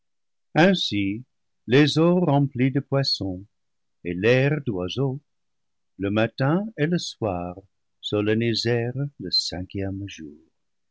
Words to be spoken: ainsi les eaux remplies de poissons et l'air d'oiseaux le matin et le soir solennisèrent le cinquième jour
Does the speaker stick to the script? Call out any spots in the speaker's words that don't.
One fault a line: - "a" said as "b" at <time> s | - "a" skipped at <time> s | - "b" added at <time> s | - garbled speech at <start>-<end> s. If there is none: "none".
none